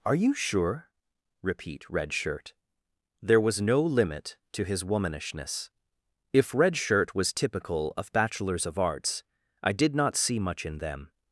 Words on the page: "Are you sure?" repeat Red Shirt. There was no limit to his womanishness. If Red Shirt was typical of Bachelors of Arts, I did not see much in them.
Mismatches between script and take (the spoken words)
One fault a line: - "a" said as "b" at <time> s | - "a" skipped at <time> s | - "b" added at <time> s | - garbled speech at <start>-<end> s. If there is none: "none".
none